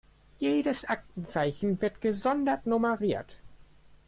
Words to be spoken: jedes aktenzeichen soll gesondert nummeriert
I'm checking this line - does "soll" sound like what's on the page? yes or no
no